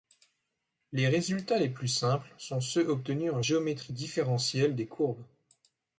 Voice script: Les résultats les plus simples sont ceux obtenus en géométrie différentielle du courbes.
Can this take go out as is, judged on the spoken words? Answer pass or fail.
fail